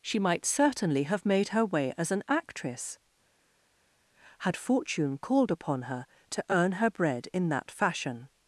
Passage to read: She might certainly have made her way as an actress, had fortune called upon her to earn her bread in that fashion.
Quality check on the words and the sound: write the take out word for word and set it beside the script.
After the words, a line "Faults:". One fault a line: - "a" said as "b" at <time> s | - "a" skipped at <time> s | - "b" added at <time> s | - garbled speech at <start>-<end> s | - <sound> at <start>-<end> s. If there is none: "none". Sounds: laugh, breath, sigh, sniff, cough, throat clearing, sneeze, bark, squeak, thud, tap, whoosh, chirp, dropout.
She might certainly have made her way as an actress, had fortune called upon her to earn her bread in that fashion.
Faults:
none